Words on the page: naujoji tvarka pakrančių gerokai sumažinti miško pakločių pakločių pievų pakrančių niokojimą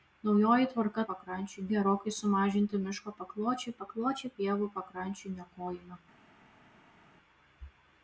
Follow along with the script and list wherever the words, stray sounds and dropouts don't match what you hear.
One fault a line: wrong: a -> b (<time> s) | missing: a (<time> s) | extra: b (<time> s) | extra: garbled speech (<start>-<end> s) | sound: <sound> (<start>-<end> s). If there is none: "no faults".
no faults